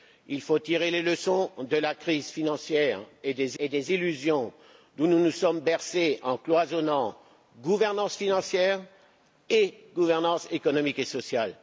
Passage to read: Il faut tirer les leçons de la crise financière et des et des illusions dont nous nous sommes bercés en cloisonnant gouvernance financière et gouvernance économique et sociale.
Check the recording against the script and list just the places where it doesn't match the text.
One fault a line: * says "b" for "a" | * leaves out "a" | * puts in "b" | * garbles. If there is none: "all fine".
all fine